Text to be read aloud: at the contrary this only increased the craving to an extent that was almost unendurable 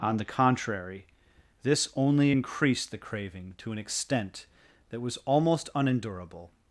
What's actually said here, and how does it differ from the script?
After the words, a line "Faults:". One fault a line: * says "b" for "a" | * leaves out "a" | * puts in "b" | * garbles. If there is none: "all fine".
on the contrary this only increased the craving to an extent that was almost unendurable
Faults:
* says "on" for "at"